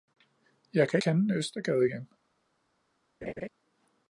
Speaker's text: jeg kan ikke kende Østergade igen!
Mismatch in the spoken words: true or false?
true